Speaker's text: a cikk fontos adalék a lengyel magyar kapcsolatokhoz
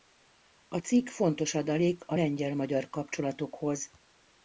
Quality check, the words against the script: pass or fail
pass